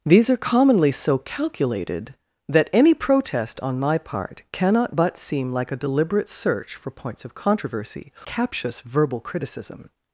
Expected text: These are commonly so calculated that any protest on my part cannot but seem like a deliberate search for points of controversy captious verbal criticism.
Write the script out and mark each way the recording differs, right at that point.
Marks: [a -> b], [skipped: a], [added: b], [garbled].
These are commonly so calculated that any protest on my part cannot but seem like a deliberate search for points of controversy captious verbal criticism.